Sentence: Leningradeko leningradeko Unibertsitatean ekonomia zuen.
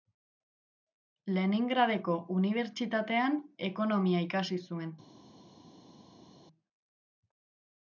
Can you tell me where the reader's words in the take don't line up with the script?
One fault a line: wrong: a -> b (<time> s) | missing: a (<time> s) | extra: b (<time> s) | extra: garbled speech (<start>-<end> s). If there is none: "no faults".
missing: leningradeko (2.1 s)
extra: ikasi (4.3 s)